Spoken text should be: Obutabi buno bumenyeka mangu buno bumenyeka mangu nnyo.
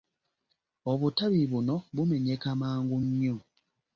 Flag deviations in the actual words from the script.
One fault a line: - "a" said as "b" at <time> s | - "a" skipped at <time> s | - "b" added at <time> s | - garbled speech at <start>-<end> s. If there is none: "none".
- "buno bumenyeka mangu" skipped at 3.0 s